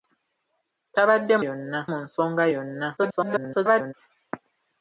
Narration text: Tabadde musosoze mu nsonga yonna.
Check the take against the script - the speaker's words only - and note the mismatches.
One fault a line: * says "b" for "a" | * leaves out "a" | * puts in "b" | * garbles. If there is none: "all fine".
* says "yonna" for "musosoze"
* garbles